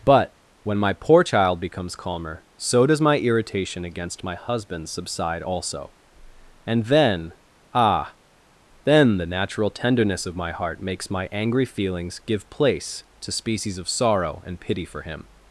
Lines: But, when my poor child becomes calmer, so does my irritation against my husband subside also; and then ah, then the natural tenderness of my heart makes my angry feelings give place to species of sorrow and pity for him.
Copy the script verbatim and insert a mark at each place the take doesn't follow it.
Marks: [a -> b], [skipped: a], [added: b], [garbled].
But, when my poor child becomes calmer, so does my irritation against my husband subside also; and then ah, then the natural tenderness of my heart makes my angry feelings give place to species of sorrow and pity for him.